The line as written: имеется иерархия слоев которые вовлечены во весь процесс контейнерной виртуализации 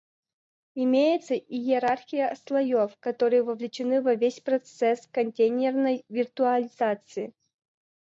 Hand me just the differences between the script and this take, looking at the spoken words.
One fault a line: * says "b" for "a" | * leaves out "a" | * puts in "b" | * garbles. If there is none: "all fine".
all fine